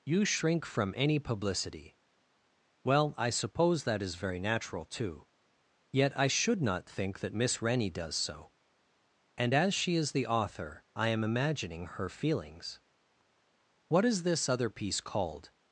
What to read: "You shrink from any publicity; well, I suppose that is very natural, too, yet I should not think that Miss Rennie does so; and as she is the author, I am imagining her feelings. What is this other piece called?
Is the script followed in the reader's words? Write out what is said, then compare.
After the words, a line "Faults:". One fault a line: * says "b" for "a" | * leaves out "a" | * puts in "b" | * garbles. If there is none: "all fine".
"You shrink from any publicity; well, I suppose that is very natural, too, yet I should not think that Miss Rennie does so; and as she is the author, I am imagining her feelings. What is this other piece called?
Faults:
all fine